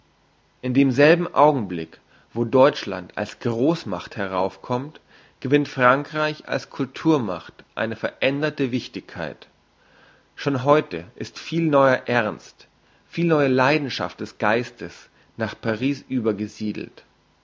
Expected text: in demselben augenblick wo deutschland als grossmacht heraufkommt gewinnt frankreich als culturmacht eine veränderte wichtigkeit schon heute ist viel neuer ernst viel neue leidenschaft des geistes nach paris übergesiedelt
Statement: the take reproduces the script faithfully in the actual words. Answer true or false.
true